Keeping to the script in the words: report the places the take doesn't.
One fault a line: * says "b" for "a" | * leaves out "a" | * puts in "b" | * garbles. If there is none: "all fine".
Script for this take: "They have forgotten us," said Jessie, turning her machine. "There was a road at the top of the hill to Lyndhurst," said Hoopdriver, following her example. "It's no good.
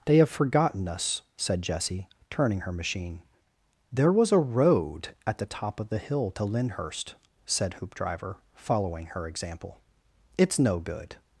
all fine